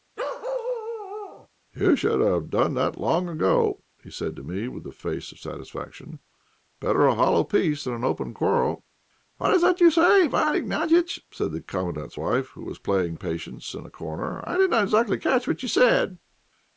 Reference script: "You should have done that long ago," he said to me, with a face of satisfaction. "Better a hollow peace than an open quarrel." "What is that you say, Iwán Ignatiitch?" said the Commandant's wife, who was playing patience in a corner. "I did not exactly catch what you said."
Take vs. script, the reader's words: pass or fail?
pass